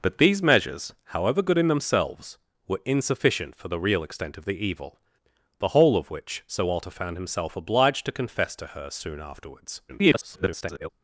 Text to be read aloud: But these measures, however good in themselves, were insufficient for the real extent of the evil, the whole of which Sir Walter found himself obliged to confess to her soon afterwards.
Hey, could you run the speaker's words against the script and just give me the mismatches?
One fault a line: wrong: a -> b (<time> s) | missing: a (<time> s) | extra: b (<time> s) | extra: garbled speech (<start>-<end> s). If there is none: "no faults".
extra: garbled speech (9.9-10.9 s)